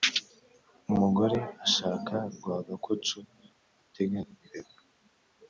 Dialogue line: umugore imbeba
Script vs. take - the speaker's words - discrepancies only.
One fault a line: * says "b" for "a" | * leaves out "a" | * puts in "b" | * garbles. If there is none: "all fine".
* puts in "ashaka rwagakoco atega"